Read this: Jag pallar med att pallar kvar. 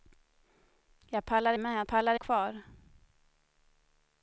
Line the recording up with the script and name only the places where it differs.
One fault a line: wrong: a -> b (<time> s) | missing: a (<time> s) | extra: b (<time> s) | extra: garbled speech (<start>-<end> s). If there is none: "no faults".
no faults